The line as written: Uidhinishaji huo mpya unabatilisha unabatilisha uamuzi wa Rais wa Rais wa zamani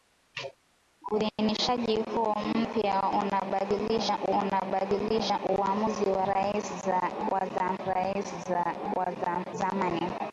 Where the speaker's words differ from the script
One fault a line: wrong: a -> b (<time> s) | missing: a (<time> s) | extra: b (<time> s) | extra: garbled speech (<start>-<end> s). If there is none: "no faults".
no faults